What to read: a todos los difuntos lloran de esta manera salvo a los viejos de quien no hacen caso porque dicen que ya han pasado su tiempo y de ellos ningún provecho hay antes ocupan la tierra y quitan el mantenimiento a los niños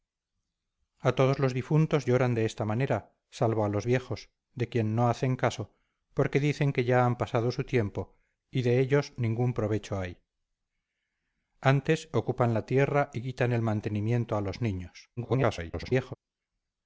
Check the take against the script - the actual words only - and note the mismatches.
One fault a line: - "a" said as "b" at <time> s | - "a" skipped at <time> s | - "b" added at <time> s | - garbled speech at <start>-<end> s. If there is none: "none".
- garbled speech at 15.2-16.2 s